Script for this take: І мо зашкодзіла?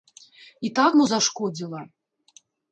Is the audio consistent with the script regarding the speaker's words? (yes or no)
no